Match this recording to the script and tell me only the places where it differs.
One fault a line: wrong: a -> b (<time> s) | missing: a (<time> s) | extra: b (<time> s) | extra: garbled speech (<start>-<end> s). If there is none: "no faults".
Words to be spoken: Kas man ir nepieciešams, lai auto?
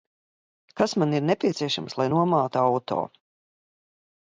extra: nomātu (2.1 s)